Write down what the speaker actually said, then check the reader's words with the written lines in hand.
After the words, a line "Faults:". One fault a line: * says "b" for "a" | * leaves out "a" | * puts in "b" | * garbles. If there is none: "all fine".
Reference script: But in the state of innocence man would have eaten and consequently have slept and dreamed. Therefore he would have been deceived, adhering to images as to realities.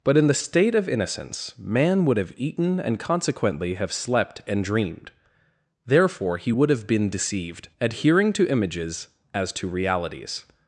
But in the state of innocence man would have eaten and consequently have slept and dreamed. Therefore he would have been deceived, adhering to images as to realities.
Faults:
all fine